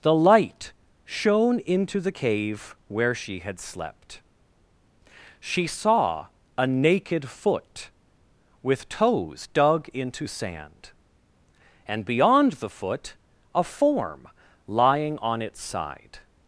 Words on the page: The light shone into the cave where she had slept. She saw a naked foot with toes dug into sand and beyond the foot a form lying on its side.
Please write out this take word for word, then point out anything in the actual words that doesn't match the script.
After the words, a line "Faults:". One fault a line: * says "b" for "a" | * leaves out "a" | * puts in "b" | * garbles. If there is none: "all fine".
The light shone into the cave where she had slept. She saw a naked foot with toes dug into sand and beyond the foot a form lying on its side.
Faults:
all fine